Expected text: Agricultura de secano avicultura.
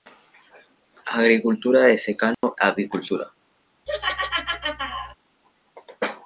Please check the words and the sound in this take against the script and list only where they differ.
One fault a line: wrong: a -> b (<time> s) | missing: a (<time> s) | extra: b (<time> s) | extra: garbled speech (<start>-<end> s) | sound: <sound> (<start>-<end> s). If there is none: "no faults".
sound: dropout (2.3-2.4 s)
sound: laugh (3.9-5.2 s)